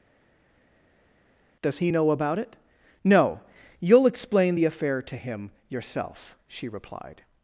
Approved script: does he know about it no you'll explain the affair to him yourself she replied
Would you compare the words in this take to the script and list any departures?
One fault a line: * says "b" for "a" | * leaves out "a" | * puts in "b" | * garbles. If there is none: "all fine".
all fine